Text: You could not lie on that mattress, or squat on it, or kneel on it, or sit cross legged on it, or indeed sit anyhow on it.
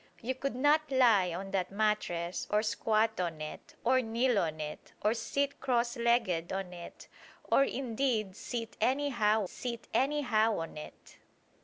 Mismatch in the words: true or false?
true